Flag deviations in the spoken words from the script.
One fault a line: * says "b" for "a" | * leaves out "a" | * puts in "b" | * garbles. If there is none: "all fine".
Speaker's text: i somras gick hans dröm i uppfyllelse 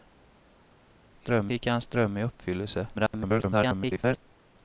* says "dröm" for "somras"
* garbles